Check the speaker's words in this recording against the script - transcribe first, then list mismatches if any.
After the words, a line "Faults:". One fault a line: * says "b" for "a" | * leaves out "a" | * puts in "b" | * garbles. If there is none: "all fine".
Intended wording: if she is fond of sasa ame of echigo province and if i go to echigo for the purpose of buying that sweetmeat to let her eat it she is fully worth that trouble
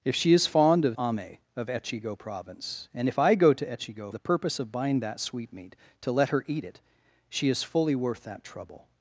if she is fond of ame of echigo province and if i go to echigo the purpose of buying that sweetmeat to let her eat it she is fully worth that trouble
Faults:
* leaves out "sasa"
* leaves out "for"